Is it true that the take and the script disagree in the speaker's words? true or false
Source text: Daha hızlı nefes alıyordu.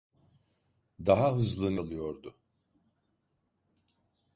true